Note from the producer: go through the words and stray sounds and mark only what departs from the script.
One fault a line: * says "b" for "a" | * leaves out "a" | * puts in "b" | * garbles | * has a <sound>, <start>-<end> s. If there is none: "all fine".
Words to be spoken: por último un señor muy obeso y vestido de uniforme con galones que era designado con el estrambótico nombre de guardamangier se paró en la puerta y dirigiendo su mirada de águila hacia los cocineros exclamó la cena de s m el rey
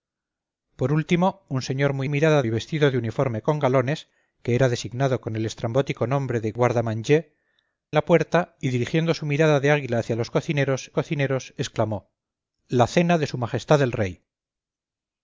* says "mirada" for "obeso"
* leaves out "se paró en"
* puts in "cocineros"